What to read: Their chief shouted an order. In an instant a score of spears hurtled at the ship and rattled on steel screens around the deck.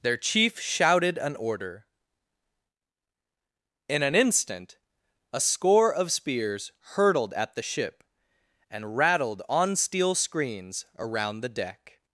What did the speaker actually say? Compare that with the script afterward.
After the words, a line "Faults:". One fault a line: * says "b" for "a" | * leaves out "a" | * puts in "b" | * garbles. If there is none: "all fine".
Their chief shouted an order. In an instant a score of spears hurtled at the ship and rattled on steel screens around the deck.
Faults:
all fine